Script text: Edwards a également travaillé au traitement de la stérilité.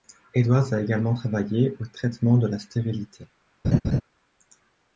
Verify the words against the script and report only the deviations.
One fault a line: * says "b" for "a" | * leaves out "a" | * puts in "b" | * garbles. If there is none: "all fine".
all fine